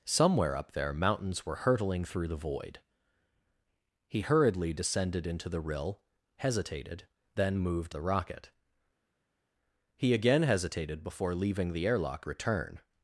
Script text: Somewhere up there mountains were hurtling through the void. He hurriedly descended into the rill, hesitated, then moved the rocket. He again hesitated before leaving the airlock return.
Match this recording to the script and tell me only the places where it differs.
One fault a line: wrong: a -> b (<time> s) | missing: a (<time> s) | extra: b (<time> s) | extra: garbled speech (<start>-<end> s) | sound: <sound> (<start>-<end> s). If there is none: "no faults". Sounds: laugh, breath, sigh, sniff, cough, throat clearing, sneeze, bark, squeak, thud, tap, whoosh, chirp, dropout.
no faults